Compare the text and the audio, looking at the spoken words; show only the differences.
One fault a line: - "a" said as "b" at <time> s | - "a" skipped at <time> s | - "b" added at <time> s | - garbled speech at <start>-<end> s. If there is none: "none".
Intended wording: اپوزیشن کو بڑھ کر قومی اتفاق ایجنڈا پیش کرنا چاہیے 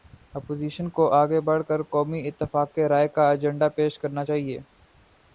- "آگے" added at 1.1 s
- "رائے کا" added at 2.9 s